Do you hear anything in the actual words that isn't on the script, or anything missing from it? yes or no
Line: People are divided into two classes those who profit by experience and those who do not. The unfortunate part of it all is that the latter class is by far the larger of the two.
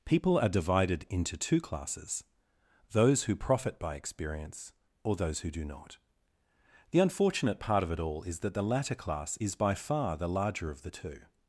yes